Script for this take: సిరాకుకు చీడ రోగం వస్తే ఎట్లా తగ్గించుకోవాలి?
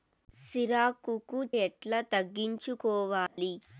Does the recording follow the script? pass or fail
fail